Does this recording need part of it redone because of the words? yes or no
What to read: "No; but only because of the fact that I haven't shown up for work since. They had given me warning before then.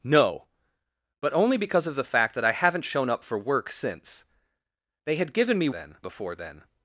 yes